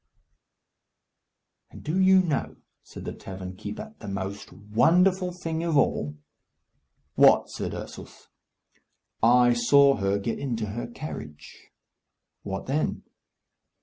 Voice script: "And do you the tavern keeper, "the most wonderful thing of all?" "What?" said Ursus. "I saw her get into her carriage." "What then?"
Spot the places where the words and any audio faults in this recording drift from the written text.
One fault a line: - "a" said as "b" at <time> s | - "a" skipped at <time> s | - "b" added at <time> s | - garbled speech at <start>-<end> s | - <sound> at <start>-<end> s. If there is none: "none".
- "know said" added at 2.2 s